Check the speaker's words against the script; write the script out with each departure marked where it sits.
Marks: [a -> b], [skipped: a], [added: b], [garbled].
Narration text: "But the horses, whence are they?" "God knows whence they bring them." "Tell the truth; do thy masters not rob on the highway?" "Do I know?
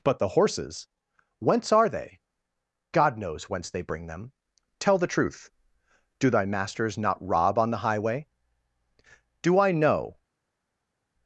"But the horses, whence are they?" "God knows whence they bring them." "Tell the truth; do thy masters not rob on the highway?" "Do I know?